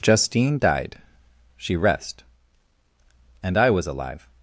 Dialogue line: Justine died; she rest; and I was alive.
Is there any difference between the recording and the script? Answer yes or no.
no